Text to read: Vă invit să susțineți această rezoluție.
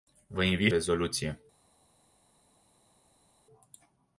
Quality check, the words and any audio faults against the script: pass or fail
fail